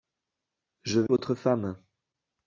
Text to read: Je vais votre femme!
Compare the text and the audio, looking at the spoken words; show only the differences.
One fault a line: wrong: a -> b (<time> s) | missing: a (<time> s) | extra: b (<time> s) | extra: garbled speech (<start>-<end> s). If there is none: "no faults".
no faults